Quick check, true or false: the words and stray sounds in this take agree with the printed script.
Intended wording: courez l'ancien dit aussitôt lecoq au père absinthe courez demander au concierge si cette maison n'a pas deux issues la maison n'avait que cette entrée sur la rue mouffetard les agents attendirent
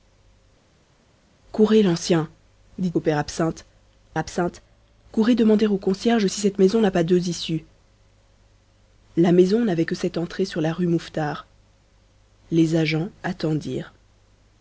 false